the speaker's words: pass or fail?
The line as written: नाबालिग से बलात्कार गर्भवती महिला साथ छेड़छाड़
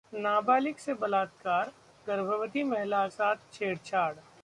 pass